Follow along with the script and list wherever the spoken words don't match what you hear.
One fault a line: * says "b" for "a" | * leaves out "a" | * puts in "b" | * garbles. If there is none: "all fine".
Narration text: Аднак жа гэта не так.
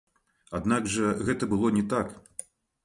* puts in "было"